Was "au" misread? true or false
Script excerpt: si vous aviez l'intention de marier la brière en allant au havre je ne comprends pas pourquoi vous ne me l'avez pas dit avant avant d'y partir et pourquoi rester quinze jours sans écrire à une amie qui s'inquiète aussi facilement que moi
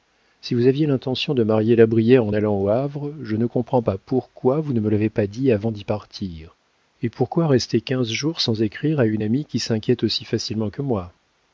false